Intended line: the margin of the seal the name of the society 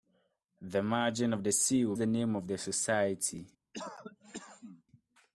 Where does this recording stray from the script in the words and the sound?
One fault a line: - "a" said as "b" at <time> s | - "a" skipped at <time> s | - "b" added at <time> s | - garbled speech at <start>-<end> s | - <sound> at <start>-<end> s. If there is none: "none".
- cough at 3.7-4.8 s